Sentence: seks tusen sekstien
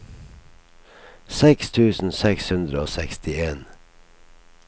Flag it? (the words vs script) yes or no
yes